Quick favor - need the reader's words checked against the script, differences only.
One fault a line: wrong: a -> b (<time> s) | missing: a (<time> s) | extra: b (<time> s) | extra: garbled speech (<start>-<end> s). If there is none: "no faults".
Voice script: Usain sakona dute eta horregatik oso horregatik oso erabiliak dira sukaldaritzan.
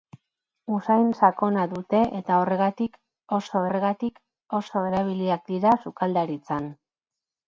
no faults